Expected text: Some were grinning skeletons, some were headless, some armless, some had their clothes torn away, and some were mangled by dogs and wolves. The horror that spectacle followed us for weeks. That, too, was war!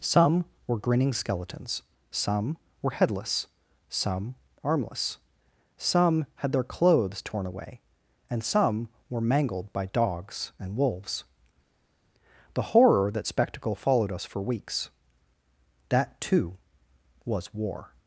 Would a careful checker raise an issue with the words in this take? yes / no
no